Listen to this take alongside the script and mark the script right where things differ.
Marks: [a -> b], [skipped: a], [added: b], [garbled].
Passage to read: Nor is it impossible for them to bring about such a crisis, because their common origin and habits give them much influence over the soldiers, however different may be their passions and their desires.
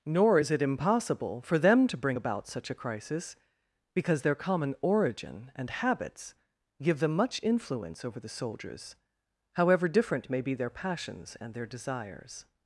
Nor is it impossible for them to bring about such a crisis, because their common origin and habits give them much influence over the soldiers, however different may be their passions and their desires.